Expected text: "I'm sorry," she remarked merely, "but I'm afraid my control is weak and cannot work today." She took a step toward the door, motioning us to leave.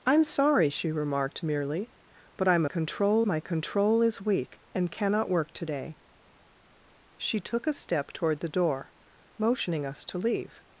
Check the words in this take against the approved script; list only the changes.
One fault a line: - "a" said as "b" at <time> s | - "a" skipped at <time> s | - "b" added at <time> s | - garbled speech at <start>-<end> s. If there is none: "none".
- "afraid" said as "control" at 2.6 s